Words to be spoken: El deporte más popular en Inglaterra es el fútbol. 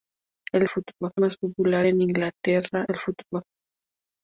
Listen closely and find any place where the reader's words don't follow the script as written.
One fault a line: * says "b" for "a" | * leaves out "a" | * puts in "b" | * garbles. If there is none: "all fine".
* says "fútbol" for "deporte"
* leaves out "es"